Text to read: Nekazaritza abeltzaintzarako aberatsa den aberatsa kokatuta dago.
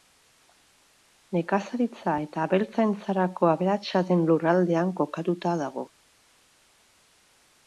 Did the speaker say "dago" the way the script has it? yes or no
yes